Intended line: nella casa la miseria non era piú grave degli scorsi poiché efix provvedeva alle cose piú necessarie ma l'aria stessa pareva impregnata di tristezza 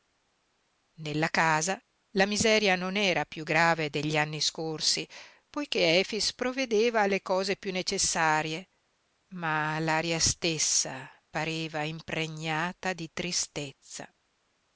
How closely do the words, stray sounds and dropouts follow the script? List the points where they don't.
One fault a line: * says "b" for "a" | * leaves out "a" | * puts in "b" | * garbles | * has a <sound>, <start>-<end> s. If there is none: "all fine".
* puts in "anni"